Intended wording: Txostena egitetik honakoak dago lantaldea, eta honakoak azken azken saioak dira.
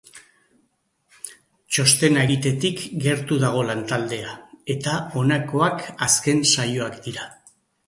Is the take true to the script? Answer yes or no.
no